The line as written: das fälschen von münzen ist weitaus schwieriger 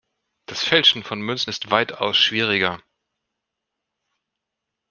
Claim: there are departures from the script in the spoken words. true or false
false